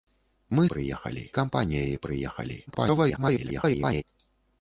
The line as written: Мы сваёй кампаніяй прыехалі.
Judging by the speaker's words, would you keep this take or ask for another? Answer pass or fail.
fail